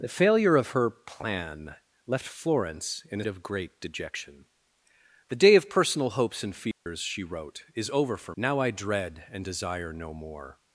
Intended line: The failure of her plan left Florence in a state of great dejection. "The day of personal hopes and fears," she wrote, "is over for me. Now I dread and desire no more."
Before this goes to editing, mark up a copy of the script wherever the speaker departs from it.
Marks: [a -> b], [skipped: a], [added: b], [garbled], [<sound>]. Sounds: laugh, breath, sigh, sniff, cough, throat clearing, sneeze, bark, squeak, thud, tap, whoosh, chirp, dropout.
The failure of her plan left Florence in a [skipped: state] of great dejection. "The day of personal hopes and fears," [dropout] she wrote, "is over for [skipped: me.] Now I dread and desire no more."